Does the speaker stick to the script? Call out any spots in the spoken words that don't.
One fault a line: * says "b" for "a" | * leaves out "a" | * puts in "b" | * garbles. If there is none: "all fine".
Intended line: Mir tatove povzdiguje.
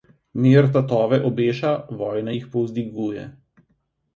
* puts in "obeša vojna jih"